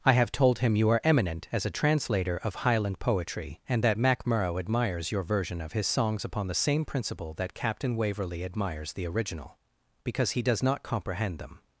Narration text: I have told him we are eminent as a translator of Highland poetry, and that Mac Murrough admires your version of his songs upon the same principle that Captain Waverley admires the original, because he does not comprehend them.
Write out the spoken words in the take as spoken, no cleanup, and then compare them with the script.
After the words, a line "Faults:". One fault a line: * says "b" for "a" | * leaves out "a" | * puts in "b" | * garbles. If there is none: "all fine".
I have told him you are eminent as a translator of Highland poetry, and that Mac Murrough admires your version of his songs upon the same principle that Captain Waverley admires the original, because he does not comprehend them.
Faults:
* says "you" for "we"